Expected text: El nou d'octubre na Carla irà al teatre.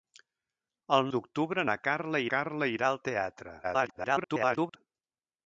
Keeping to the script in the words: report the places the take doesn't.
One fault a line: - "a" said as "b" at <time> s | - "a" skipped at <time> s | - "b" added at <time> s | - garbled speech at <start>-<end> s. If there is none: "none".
- "nou" skipped at 1.1 s
- "Carla" added at 2.3 s
- garbled speech at 3.6-4.8 s